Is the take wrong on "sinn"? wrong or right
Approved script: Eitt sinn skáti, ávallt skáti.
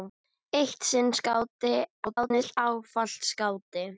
right